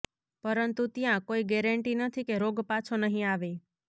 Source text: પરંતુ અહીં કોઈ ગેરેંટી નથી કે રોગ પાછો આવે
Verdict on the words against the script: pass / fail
fail